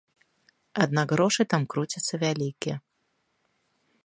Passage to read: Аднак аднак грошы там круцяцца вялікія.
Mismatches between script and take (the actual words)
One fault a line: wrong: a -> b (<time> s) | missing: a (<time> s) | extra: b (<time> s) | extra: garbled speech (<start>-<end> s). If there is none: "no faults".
missing: аднак (1.1 s)